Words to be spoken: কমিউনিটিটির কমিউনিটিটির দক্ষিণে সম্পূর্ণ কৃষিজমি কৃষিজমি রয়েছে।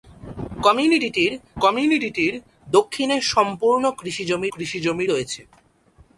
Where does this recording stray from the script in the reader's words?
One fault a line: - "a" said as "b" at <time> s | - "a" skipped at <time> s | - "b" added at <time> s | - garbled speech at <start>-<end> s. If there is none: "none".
none